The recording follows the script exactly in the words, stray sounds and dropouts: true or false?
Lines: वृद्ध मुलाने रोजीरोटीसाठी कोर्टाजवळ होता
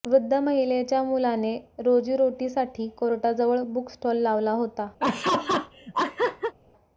false